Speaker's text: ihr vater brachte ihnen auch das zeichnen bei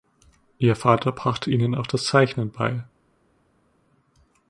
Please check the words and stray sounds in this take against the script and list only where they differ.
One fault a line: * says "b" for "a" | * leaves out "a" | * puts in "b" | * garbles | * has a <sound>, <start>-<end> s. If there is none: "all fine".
all fine